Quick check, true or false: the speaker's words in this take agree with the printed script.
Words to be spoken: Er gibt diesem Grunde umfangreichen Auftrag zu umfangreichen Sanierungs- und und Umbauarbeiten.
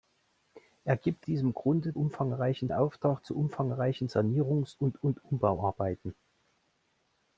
true